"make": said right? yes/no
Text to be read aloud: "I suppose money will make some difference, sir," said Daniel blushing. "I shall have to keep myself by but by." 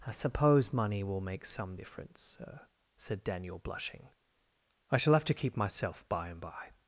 yes